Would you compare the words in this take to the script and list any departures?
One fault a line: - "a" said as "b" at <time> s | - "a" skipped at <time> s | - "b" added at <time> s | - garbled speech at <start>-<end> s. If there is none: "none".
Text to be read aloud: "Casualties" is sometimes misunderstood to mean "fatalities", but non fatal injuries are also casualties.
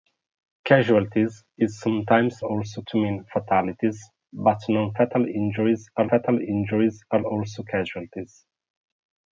- "misunderstood" said as "also" at 2.4 s
- "fatal injuries are" added at 6.1 s